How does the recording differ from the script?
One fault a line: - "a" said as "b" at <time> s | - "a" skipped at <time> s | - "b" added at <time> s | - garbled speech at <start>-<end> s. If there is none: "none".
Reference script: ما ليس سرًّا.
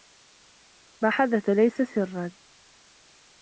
- "حدث" added at 1.1 s